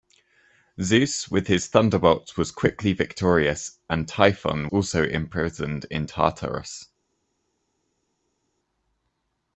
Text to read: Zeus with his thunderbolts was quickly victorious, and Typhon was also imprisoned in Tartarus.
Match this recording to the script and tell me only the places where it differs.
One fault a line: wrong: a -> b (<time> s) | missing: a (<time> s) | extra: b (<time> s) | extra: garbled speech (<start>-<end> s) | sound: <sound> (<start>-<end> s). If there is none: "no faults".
missing: was (4.7 s)